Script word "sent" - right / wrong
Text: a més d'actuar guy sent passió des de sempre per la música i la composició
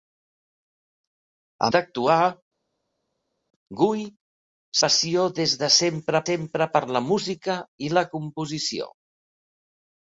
wrong